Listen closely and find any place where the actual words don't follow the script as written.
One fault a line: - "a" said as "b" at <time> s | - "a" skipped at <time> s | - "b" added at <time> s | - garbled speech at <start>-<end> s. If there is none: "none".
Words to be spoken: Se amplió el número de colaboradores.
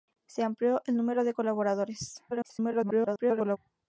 - garbled speech at 2.3-3.6 s